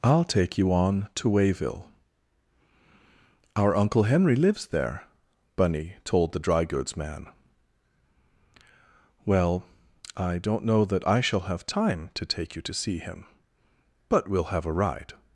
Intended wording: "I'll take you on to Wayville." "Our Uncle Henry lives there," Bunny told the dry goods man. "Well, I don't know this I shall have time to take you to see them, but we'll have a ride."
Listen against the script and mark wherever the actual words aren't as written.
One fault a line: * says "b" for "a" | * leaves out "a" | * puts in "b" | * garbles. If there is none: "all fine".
* says "that" for "this"
* says "him" for "them"